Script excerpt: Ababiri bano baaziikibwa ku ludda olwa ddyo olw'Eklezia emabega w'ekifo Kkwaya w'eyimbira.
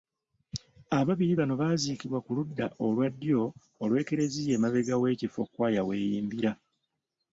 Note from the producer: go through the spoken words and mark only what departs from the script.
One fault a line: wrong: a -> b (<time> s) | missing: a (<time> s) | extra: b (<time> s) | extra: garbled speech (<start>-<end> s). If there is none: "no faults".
no faults